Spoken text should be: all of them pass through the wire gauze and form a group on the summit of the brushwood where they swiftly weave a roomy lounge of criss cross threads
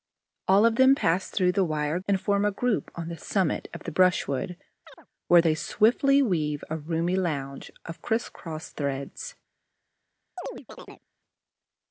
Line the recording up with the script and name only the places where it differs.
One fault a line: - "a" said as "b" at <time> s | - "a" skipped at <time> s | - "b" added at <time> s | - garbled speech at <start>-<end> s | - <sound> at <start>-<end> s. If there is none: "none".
- "gauze" skipped at 2.0 s
- chirp at 4.8-5.1 s
- chirp at 10.4-11.0 s